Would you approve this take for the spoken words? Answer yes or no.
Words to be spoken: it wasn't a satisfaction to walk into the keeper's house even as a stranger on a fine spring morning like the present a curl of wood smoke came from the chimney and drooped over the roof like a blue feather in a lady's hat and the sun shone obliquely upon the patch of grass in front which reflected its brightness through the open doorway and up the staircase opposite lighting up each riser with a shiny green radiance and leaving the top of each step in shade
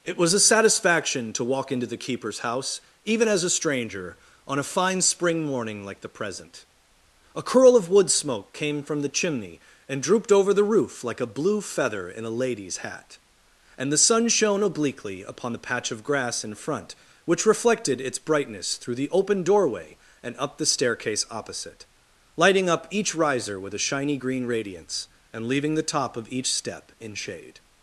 no